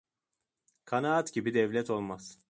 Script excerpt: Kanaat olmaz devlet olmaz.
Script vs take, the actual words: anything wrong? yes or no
yes